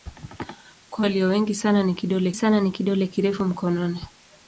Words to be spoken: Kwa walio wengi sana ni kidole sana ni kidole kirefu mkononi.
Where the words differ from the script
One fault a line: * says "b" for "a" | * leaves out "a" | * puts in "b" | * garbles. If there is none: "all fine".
all fine